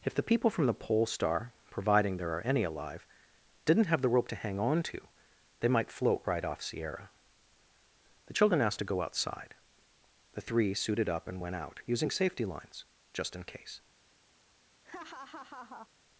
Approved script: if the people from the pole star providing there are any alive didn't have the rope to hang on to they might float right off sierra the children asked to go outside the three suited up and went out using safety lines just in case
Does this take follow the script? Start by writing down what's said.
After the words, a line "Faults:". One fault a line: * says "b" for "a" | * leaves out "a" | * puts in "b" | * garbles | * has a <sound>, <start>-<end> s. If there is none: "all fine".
if the people from the pole star providing there are any alive didn't have the rope to hang on to they might float right off sierra the children asked to go outside the three suited up and went out using safety lines just in case
Faults:
* has a laugh, 14.8-15.9 s